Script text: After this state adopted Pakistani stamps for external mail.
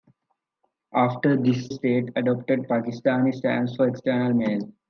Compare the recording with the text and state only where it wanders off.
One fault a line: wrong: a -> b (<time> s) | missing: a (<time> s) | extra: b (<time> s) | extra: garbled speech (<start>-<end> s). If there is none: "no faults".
no faults